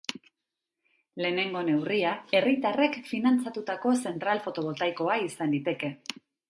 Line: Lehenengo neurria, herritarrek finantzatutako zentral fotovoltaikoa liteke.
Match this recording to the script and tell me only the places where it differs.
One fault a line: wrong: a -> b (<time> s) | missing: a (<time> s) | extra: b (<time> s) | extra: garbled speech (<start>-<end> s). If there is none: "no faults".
extra: izan (5.3 s)